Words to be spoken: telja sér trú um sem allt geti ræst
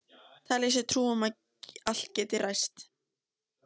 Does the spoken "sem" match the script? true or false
false